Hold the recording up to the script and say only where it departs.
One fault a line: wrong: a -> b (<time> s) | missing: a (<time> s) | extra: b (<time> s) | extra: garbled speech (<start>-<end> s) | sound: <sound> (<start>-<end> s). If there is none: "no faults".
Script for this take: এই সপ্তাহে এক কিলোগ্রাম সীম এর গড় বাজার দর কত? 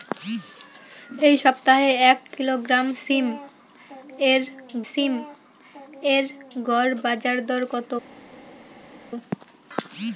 extra: সীম এর (4.9 s)